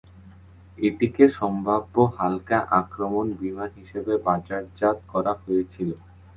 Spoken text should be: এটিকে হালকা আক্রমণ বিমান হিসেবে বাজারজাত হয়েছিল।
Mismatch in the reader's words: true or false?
true